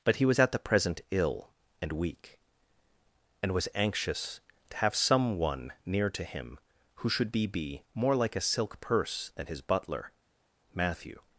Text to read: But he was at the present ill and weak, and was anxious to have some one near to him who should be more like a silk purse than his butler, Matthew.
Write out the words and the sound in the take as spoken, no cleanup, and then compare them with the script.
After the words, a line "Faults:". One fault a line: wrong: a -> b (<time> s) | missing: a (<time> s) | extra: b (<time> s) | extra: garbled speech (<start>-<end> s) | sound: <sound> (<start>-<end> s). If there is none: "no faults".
But he was at the present ill and weak, and was anxious to have some one near to him who should be be more like a silk purse than his butler, Matthew.
Faults:
extra: be (7.5 s)